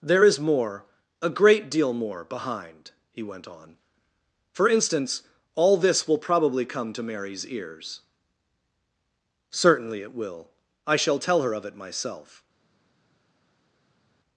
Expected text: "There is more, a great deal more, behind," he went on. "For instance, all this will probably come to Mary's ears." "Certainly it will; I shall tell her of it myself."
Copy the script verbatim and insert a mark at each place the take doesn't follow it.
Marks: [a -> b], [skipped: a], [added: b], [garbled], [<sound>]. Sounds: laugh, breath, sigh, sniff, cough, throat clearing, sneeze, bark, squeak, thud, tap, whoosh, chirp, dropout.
"There is more, a great deal more, behind," he went on. "For instance, all this will probably come to Mary's ears." "Certainly it will; I shall tell her of it myself."